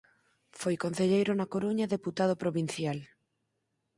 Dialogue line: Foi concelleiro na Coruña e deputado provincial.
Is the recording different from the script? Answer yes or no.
no